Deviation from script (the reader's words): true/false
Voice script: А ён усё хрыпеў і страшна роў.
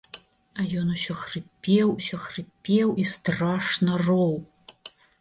true